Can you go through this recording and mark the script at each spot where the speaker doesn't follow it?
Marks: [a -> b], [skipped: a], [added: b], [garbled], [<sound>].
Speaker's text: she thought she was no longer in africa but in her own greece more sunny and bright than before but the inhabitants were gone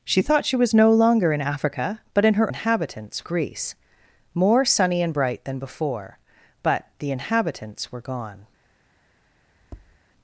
she thought she was no longer in africa but in her [own -> inhabitants] greece more sunny and bright than before but the inhabitants were gone [tap]